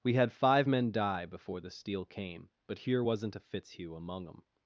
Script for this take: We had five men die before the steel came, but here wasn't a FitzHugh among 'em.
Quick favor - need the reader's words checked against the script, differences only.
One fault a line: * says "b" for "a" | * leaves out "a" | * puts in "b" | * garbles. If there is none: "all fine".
all fine